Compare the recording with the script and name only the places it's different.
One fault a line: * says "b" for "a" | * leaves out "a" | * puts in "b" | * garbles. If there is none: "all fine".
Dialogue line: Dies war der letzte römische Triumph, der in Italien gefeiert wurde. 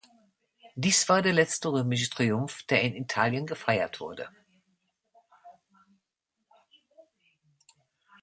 all fine